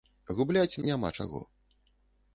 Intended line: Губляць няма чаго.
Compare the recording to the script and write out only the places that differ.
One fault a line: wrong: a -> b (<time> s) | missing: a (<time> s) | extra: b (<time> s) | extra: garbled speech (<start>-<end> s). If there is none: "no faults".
no faults